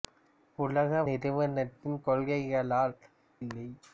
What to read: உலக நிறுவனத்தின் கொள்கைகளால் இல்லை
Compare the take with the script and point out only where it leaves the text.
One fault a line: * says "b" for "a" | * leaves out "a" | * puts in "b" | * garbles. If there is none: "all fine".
all fine